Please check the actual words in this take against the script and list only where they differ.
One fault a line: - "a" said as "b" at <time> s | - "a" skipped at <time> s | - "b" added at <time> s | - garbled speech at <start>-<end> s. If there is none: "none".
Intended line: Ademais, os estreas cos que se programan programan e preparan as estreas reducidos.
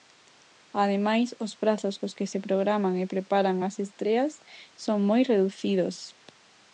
- "estreas" said as "prazos" at 1.6 s
- "programan" skipped at 2.9 s
- "son moi" added at 4.8 s